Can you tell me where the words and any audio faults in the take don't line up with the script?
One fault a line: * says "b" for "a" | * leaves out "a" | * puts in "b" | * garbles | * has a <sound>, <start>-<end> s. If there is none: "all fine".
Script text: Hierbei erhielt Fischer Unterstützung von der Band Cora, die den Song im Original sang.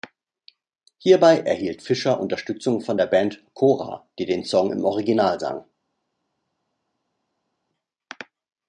all fine